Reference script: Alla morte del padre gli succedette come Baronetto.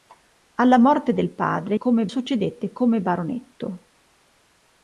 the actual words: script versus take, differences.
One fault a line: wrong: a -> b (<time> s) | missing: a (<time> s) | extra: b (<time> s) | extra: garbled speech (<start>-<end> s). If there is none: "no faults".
wrong: gli -> come (1.7 s)